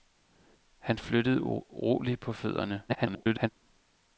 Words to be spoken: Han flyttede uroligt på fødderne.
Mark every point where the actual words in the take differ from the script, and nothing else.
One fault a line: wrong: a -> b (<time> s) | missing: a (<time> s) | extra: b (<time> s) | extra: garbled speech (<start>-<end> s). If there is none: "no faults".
extra: garbled speech (2.9-3.5 s)